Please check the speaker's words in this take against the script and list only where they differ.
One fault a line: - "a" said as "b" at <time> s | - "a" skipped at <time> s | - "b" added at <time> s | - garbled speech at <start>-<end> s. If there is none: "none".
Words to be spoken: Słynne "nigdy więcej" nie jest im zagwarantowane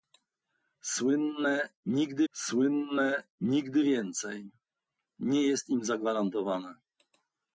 - "słynne nigdy" added at 2.3 s